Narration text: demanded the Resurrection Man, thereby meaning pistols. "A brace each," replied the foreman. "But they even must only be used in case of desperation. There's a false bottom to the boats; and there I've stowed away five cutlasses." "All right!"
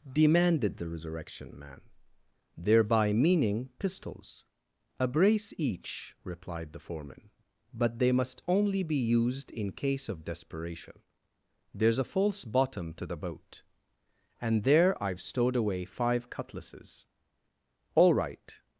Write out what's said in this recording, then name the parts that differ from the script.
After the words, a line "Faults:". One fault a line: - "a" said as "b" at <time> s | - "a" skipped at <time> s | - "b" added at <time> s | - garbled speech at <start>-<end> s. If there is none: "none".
demanded the Resurrection Man, thereby meaning pistols. "A brace each," replied the foreman. "But they must only be used in case of desperation. There's a false bottom to the boat; and there I've stowed away five cutlasses." "All right!"
Faults:
- "even" skipped at 8.1 s
- "boats" said as "boat" at 13.2 s